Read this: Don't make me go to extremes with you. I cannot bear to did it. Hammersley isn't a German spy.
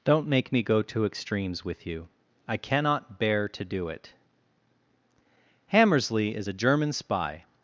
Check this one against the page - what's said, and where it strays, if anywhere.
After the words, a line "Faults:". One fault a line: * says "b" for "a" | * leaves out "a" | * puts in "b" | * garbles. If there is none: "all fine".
Don't make me go to extremes with you. I cannot bear to do it. Hammersley is a German spy.
Faults:
* says "do" for "did"
* says "is" for "isn't"